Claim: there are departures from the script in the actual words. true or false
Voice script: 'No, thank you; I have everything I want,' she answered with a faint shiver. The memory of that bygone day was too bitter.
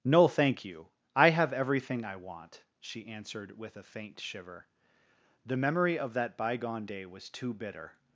false